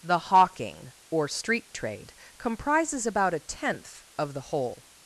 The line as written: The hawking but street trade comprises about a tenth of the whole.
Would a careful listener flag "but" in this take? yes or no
yes